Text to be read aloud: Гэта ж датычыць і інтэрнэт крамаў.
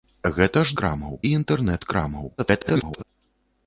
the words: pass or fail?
fail